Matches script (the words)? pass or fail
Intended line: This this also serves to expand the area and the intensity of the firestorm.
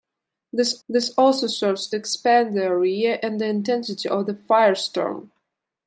pass